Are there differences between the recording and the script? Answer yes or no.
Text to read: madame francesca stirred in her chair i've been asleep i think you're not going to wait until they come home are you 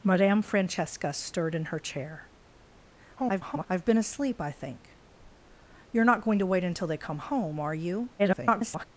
yes